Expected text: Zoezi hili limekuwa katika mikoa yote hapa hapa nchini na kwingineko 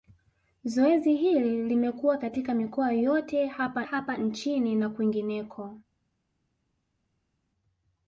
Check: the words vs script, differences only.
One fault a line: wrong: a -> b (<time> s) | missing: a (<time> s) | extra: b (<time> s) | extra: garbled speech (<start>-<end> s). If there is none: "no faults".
no faults